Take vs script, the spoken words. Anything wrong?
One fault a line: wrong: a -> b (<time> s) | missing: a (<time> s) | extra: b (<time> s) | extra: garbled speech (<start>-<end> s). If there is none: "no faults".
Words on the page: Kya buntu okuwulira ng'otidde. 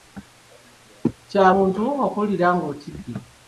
no faults